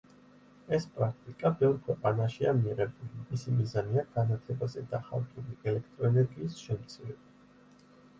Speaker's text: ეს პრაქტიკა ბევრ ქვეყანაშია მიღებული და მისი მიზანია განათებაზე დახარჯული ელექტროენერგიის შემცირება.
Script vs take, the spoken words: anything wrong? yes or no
yes